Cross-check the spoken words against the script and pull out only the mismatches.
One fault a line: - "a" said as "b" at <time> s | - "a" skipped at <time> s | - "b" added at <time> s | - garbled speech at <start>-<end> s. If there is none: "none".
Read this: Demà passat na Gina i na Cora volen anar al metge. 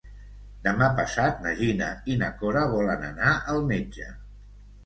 none